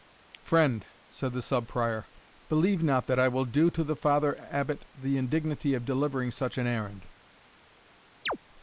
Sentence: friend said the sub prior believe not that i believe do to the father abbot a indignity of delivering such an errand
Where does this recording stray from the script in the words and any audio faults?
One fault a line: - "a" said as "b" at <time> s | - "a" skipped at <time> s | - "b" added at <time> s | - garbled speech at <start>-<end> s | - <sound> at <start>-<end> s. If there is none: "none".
- "believe" said as "will" at 3.3 s
- "a" said as "the" at 5.0 s
- chirp at 8.3-8.4 s